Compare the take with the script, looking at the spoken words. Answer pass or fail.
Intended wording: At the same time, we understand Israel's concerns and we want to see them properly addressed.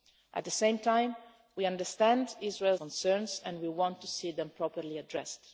pass